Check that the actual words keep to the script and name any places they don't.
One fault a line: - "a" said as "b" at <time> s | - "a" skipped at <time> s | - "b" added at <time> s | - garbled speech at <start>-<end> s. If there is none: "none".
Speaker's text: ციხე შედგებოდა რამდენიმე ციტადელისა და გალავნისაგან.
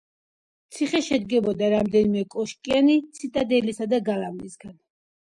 - "კოშკიანი" added at 2.4 s